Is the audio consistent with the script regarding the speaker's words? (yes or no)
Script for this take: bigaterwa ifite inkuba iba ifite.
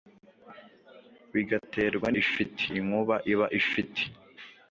yes